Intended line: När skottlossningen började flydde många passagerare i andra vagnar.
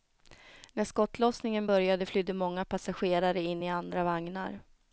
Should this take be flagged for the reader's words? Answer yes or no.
yes